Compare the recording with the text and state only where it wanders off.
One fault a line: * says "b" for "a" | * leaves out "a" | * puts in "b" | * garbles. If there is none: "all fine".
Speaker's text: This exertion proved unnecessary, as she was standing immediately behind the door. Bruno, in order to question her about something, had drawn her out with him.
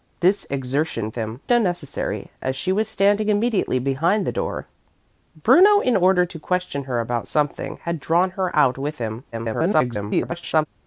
* says "him" for "proved"
* garbles